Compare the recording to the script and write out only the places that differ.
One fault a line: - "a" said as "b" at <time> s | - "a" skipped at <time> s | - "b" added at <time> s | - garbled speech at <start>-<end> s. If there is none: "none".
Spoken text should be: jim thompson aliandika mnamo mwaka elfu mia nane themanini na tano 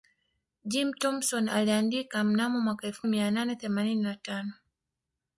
none